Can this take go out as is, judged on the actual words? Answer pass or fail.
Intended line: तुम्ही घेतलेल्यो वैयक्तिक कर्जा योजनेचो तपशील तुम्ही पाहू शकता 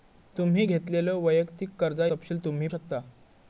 fail